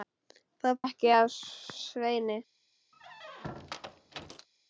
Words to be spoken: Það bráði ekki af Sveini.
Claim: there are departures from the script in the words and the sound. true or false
true